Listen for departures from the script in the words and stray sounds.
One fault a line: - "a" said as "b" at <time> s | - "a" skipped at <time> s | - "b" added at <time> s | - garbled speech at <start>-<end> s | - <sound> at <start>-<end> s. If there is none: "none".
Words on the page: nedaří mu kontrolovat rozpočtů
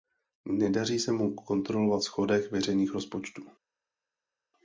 - "se" added at 1.0 s
- "schodek veřejných" added at 2.0 s